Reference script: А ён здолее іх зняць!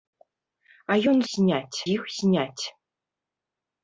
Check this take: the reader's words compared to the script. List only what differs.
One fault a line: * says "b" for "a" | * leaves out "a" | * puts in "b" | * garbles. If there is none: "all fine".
* says "зняць" for "здолее"